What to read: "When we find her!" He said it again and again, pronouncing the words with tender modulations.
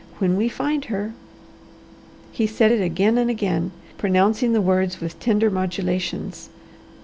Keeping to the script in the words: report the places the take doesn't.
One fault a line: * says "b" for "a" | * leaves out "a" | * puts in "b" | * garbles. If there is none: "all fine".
all fine